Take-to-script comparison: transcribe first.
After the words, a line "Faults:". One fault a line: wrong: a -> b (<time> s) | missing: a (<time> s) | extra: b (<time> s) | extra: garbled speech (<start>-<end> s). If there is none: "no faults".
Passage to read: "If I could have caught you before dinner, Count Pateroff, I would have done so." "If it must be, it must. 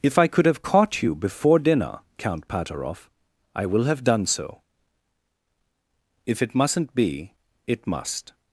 "If I could have caught you before dinner, Count Pateroff, I will have done so." "If it mustn't be, it must.
Faults:
wrong: would -> will (3.7 s)
wrong: must -> mustn't (6.5 s)